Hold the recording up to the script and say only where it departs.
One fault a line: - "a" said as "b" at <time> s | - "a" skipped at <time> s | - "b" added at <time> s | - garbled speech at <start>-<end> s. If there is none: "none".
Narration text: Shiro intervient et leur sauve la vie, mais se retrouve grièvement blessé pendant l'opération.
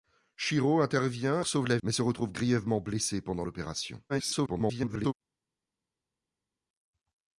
- "et leur" skipped at 1.4 s
- "vie" skipped at 1.8 s
- garbled speech at 4.1-5.1 s